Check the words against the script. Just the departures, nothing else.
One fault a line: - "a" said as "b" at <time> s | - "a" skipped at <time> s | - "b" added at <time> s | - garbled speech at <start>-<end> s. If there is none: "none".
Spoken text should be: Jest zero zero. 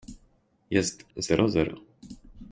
none